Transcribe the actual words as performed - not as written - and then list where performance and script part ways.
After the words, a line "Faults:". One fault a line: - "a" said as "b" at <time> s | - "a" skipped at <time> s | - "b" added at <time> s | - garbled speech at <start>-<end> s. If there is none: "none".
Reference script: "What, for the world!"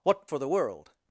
"What, for the world!"
Faults:
none